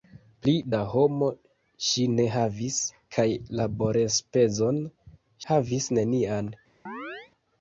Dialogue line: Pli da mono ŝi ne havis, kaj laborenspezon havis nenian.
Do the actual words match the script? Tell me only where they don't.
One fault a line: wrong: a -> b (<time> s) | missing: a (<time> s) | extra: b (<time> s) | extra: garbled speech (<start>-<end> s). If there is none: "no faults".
no faults